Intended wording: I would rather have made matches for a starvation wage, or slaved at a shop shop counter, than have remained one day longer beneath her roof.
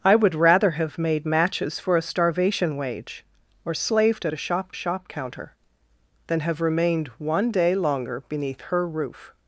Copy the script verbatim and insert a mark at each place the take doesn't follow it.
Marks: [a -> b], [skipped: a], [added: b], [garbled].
I would rather have made matches for a starvation wage, or slaved at a shop shop counter, than have remained one day longer beneath her roof.